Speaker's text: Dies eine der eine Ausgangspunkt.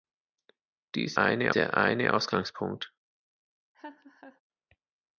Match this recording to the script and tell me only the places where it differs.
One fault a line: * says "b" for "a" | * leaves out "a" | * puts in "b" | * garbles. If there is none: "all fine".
all fine